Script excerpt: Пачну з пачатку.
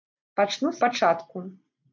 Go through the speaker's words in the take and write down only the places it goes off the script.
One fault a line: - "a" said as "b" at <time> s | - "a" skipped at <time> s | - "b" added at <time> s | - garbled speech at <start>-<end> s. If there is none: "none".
none